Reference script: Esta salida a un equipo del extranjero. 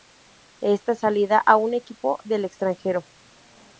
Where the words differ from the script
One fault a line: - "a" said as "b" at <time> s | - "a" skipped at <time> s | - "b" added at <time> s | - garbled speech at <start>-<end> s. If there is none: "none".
none